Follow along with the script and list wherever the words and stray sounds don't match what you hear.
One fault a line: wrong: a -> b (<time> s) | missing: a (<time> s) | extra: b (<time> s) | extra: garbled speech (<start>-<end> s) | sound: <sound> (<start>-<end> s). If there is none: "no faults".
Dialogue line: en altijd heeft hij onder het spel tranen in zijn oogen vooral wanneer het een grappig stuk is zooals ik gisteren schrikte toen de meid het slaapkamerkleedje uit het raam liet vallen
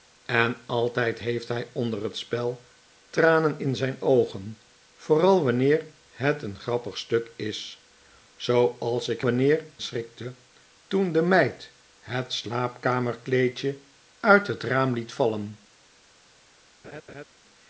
wrong: gisteren -> wanneer (9.2 s)
sound: laugh (16.8-17.2 s)